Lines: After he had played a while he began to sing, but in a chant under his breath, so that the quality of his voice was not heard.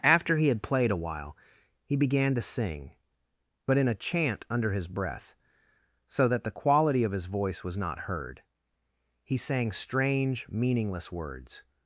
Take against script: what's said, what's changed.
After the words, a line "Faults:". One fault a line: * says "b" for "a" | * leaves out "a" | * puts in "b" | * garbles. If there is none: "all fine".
After he had played a while he began to sing, but in a chant under his breath, so that the quality of his voice was not heard. He sang strange meaningless words
Faults:
* puts in "He sang strange meaningless words"